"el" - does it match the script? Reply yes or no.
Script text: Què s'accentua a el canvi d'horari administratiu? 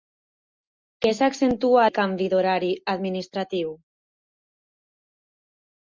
yes